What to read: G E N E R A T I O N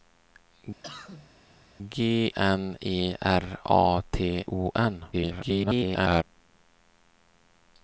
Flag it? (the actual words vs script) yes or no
yes